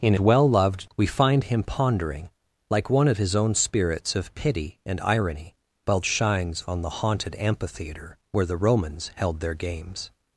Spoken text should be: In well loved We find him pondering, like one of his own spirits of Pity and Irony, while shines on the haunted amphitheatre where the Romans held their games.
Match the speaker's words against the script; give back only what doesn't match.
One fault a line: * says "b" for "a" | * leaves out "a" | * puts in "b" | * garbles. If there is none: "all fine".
all fine